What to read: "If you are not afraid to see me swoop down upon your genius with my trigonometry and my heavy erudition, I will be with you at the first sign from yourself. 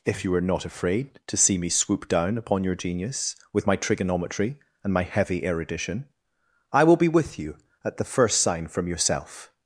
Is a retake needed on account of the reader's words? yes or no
no